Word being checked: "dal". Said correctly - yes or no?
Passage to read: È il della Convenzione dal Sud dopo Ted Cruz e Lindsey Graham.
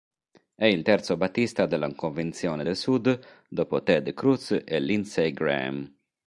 no